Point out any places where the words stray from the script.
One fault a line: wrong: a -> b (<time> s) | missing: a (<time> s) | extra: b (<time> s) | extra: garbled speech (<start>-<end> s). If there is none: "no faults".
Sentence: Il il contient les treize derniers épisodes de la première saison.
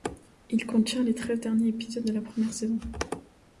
missing: il (0.7 s)